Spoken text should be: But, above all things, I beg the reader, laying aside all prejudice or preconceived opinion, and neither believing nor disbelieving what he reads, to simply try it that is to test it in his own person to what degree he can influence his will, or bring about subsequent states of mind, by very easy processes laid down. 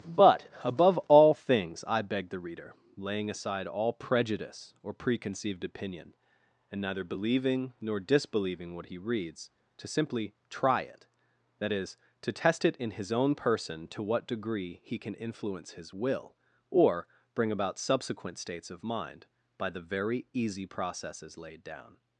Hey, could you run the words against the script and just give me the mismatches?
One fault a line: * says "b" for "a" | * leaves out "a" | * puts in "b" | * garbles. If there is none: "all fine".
* puts in "the"